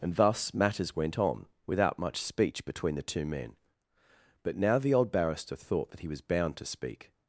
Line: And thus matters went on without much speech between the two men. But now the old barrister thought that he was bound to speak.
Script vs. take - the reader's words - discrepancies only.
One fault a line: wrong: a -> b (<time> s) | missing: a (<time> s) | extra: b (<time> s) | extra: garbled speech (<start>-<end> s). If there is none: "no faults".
no faults